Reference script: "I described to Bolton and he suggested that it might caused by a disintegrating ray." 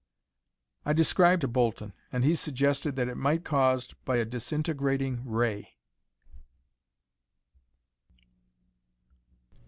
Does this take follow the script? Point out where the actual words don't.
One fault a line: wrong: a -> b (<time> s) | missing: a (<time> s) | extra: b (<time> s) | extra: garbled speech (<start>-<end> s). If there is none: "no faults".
no faults